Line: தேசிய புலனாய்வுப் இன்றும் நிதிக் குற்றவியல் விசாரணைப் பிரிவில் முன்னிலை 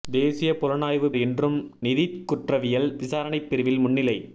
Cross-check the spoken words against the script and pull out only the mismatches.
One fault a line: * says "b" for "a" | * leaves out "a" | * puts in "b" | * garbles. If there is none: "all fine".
all fine